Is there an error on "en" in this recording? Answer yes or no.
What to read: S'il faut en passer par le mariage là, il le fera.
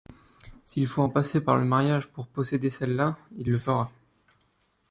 no